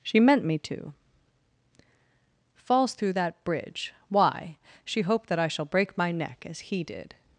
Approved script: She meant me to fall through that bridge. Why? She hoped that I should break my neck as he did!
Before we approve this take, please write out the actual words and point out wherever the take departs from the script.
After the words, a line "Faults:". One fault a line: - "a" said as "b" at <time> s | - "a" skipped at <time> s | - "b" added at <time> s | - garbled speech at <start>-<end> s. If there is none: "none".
She meant me to falls through that bridge. Why? She hoped that I shall break my neck as he did!
Faults:
- "fall" said as "falls" at 2.7 s
- "should" said as "shall" at 5.5 s